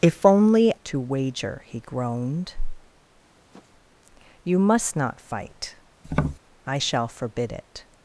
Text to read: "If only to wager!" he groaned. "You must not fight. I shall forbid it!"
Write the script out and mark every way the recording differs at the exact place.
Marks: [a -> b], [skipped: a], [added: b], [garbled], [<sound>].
"If only to wager!" he groaned. [sniff] "You must not fight. [tap] I shall forbid it!"